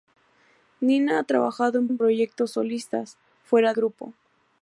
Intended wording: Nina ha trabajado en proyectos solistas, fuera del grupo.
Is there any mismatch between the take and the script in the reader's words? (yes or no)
yes